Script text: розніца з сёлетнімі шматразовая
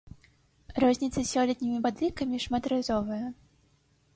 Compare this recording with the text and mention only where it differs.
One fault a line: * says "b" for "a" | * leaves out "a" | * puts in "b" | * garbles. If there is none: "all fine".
* puts in "падлікамі"